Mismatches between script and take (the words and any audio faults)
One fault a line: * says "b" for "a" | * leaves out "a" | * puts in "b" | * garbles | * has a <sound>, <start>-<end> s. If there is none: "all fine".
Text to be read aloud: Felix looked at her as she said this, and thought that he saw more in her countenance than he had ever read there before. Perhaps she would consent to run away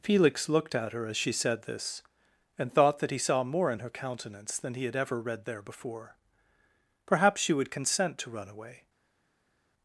all fine